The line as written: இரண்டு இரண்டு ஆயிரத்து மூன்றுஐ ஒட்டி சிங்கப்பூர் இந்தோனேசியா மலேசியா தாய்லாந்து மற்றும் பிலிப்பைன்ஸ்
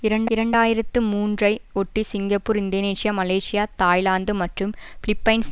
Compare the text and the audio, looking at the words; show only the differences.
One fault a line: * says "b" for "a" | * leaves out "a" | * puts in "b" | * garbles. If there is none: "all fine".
all fine